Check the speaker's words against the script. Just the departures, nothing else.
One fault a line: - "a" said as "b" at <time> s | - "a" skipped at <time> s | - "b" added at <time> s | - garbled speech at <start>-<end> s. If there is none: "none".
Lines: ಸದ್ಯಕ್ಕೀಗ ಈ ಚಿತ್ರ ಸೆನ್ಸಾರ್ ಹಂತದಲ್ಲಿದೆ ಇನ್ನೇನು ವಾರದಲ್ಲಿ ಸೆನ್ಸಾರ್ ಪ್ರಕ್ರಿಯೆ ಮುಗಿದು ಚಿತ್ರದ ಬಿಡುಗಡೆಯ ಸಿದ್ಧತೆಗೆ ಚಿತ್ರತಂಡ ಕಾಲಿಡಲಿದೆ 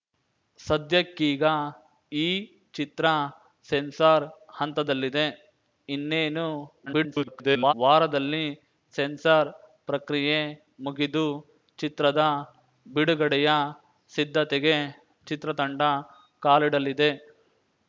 - garbled speech at 6.9-7.7 s